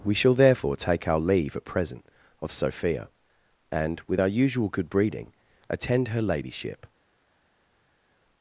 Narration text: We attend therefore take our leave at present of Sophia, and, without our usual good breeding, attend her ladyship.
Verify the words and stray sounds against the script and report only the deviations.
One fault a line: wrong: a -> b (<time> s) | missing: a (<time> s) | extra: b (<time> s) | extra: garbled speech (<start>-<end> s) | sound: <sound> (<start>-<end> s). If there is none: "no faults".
wrong: attend -> shall (0.1 s)
wrong: without -> with (4.1 s)